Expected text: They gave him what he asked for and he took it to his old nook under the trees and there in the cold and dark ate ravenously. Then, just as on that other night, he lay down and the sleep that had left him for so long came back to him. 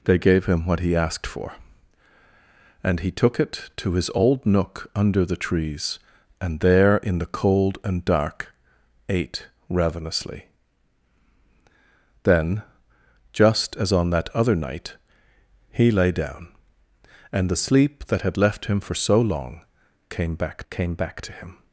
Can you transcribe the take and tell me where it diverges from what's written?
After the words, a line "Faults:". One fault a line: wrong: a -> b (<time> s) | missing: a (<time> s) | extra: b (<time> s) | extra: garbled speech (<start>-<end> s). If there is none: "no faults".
They gave him what he asked for and he took it to his old nook under the trees and there in the cold and dark ate ravenously. Then, just as on that other night, he lay down and the sleep that had left him for so long came back came back to him.
Faults:
extra: came back (20.7 s)